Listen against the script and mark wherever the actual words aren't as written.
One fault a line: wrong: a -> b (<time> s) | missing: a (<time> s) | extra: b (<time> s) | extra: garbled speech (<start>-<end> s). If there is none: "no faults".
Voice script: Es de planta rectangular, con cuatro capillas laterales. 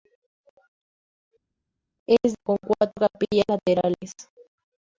missing: de planta rectangular (2.4 s)